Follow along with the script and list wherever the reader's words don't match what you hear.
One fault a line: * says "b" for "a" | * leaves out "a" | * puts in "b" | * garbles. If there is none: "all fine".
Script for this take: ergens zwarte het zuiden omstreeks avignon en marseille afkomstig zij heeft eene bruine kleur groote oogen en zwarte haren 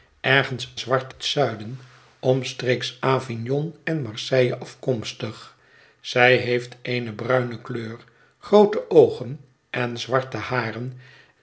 all fine